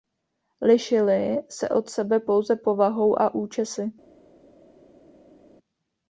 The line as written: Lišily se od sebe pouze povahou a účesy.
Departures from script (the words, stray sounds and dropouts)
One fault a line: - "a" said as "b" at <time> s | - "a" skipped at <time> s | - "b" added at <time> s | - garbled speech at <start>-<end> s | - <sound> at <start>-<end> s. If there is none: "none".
none